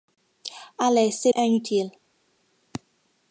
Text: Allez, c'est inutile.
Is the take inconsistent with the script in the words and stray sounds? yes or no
no